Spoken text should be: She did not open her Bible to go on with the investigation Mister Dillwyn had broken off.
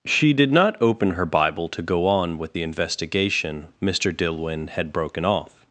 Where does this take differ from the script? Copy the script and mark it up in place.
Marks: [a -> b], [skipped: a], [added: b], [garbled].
She did not open her Bible to go on with the investigation Mister Dillwyn had broken off.